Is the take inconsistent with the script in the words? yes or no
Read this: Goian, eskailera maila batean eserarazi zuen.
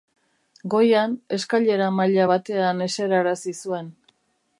no